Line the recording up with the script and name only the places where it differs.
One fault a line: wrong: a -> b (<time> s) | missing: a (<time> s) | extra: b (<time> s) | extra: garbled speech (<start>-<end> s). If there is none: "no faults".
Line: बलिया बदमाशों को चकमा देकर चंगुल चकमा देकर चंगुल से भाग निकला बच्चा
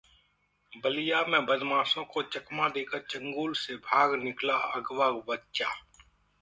extra: में (1.2 s)
missing: चकमा देकर चंगुल (3.5 s)
extra: अगवा (4.7 s)